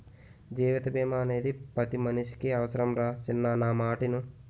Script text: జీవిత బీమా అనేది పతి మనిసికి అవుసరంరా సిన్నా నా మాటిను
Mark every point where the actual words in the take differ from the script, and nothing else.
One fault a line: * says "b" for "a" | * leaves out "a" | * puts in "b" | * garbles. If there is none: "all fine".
all fine